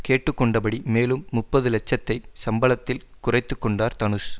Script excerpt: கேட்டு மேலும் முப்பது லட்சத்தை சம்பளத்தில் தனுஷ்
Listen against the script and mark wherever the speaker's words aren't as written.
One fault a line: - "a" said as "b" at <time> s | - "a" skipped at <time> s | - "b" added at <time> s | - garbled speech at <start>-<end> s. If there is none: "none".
- "கொண்டபடி" added at 0.3 s
- "குறைத்து கொண்டார்" added at 3.2 s